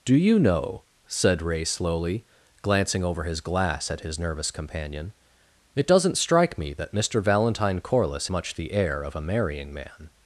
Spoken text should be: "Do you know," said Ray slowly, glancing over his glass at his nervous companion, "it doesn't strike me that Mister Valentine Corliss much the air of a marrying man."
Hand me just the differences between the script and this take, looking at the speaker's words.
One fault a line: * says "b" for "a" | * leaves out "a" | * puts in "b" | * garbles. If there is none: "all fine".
all fine